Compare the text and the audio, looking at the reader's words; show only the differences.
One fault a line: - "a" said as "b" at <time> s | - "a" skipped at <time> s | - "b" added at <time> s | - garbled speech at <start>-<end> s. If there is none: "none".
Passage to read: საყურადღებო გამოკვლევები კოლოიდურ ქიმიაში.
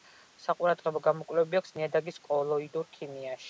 - "აქვს ნიადაგის" added at 1.6 s